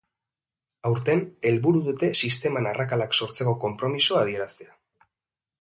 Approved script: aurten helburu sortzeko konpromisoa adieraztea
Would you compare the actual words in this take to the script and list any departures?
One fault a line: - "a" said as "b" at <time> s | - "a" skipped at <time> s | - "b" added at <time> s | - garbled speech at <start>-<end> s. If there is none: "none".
- "dute sisteman arrakalak" added at 1.9 s